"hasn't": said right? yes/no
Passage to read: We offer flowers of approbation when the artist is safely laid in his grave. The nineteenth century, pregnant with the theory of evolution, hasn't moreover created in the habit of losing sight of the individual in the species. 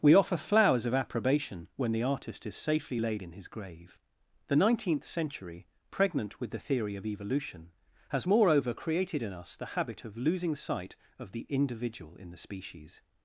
no